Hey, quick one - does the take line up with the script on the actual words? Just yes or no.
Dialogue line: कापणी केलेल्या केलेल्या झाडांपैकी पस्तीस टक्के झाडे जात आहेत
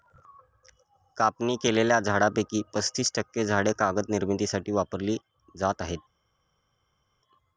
no